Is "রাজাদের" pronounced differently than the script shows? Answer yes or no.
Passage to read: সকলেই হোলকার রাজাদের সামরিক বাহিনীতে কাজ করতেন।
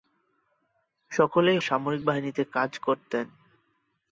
yes